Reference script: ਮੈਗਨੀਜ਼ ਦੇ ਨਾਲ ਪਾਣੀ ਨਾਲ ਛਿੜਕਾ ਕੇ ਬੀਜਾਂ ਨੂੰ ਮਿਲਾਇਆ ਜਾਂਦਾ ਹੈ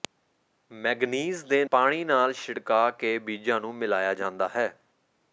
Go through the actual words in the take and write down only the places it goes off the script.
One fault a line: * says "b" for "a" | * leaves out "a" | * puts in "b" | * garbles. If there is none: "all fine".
* leaves out "ਨਾਲ"